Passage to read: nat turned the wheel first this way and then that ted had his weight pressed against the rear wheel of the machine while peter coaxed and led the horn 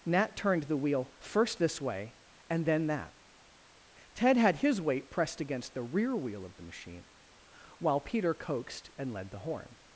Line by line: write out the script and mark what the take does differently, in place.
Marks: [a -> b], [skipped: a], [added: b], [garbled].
nat turned the wheel first this way and then that ted had his weight pressed against the rear wheel of the machine while peter coaxed and led the horn